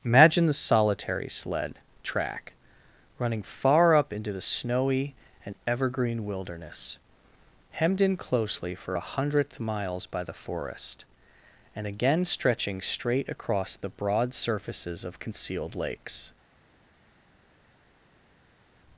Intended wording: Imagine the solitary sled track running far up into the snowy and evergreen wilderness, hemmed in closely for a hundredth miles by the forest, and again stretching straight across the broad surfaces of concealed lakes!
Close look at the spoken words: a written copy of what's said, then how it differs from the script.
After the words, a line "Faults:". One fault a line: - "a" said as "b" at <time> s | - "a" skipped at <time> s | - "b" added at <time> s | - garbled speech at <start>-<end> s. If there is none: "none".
Imagine the solitary sled track running far up into the snowy and evergreen wilderness, hemmed in closely for a hundredth miles by the forest, and again stretching straight across the broad surfaces of concealed lakes!
Faults:
none